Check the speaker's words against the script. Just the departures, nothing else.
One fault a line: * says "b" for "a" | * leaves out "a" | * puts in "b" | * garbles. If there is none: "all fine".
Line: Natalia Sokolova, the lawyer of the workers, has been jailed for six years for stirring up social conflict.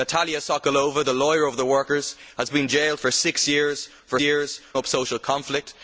* says "years" for "stirring"